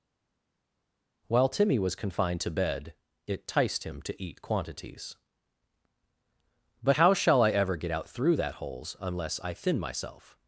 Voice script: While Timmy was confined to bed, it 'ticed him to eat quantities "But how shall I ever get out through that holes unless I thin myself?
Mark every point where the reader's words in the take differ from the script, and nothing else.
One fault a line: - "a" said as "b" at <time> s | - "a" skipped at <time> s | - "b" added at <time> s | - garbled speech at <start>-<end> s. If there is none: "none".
none